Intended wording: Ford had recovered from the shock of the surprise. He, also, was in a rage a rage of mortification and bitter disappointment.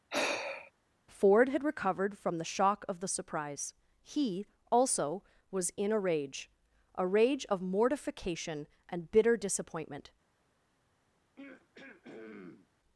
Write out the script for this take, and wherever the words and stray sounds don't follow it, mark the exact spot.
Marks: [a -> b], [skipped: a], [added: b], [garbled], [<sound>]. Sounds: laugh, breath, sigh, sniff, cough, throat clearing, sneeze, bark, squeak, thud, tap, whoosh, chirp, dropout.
[sigh] Ford had recovered from the shock of the surprise. He, also, was in a rage a rage of mortification and bitter disappointment. [throat clearing]